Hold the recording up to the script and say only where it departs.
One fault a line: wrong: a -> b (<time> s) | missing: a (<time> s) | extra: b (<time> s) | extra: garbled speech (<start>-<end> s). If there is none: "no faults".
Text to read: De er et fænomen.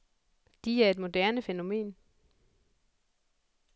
extra: moderne (1.0 s)